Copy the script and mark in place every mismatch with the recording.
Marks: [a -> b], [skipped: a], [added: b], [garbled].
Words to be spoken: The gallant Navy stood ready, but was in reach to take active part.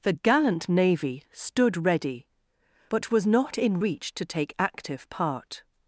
The gallant Navy stood ready, but was [added: not] in reach to take active part.